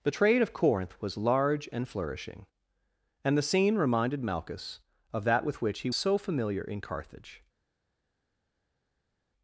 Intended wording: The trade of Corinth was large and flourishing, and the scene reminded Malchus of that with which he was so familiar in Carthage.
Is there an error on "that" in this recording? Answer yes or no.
no